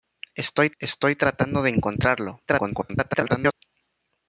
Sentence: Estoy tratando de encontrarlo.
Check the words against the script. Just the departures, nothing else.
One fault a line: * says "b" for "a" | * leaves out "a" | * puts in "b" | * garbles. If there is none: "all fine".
* puts in "estoy"
* garbles